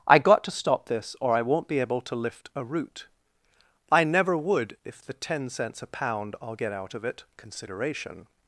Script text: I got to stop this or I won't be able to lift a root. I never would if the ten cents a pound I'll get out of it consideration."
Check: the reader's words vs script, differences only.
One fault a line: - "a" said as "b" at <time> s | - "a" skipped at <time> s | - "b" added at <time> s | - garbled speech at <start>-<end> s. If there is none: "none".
none